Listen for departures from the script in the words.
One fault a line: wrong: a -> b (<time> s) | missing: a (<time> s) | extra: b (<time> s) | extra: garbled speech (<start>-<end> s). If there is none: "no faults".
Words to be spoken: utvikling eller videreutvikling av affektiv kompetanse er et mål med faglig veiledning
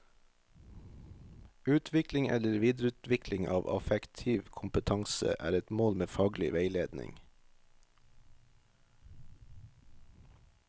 no faults